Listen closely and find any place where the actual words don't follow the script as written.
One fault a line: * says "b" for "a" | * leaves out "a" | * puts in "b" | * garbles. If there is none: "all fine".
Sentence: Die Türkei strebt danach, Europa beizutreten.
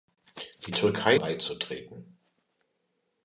* leaves out "strebt danach Europa"